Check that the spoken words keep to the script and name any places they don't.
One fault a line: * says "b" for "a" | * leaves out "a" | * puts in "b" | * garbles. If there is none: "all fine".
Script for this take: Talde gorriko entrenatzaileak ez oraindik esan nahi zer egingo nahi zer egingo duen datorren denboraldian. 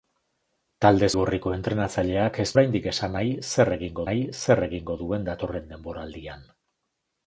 all fine